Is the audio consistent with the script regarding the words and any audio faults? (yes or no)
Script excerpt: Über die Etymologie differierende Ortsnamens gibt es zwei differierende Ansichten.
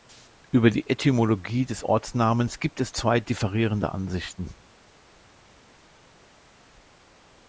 no